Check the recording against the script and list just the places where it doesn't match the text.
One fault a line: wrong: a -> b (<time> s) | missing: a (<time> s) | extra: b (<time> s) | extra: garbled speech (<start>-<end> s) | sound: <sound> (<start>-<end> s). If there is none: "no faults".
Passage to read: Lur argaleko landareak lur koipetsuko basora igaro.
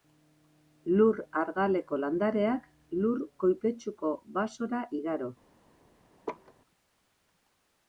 sound: laugh (6.3-6.5 s)